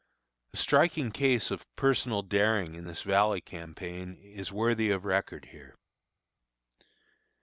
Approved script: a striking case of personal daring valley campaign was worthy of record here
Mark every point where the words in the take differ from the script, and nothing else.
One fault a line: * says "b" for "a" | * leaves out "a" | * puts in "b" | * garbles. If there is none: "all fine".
* puts in "in this"
* says "is" for "was"